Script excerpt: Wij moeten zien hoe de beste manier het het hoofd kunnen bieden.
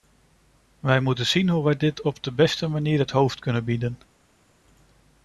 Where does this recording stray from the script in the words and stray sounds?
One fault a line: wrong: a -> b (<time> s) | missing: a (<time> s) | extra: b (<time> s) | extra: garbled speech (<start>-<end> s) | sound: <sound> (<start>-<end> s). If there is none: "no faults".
extra: wij dit op (1.6 s)
missing: het (3.1 s)